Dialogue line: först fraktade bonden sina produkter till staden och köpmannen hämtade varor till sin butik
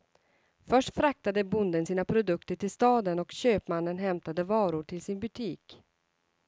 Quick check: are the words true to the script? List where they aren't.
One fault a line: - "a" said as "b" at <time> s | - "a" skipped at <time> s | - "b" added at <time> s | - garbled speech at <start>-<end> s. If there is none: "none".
none